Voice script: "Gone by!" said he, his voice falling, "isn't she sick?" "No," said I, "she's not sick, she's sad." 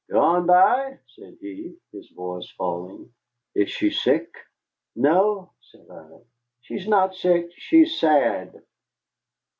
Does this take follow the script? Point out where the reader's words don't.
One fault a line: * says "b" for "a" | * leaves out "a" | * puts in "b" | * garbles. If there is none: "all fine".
* says "is" for "isn't"